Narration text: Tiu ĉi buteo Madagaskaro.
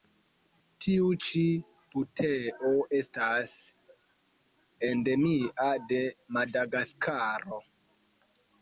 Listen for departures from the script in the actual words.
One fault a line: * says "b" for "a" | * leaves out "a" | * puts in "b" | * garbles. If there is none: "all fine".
* puts in "estas endemia de"